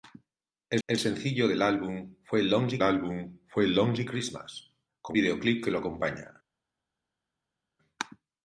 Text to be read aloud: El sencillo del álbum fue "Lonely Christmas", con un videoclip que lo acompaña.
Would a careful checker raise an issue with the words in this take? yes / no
yes